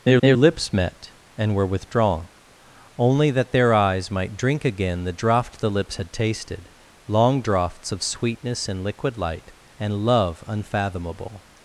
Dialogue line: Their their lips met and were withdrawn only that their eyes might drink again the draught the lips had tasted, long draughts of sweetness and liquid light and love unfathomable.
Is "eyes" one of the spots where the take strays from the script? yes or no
no